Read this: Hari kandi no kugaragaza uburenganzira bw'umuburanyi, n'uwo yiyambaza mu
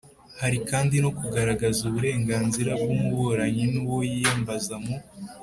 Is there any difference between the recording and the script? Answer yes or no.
no